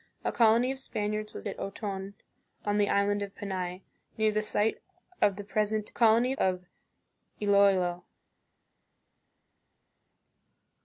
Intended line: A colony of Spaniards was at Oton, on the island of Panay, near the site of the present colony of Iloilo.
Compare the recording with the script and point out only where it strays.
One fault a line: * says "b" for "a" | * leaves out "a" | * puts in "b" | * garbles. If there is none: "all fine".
all fine